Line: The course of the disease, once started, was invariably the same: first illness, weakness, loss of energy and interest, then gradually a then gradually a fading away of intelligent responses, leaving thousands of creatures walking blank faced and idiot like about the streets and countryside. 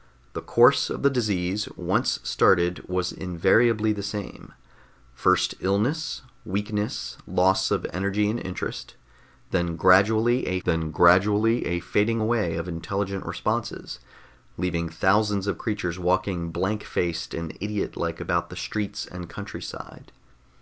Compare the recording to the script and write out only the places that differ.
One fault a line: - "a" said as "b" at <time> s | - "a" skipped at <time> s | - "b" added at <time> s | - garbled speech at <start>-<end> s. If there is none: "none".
none